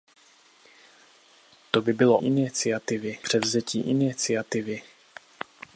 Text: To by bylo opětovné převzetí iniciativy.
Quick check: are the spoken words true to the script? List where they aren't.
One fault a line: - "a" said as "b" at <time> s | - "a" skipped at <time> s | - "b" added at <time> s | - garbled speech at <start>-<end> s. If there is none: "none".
- "opětovné" said as "iniciativy" at 2.2 s